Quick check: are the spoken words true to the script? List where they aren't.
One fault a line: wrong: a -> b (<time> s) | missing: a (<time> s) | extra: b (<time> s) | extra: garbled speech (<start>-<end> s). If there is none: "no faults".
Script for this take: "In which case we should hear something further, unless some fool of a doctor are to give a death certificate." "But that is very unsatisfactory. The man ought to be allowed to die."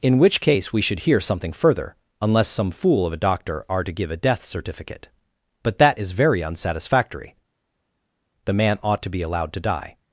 no faults